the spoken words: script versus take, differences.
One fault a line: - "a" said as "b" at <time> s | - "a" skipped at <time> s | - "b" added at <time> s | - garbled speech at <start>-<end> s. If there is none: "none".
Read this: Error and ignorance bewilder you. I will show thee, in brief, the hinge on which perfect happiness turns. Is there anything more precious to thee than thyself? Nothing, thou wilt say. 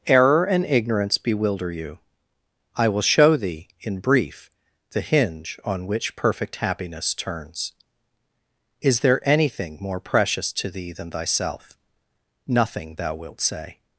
none